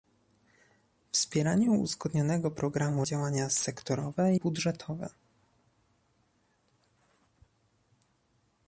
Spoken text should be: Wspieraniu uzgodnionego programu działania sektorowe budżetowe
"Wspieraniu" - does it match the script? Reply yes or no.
yes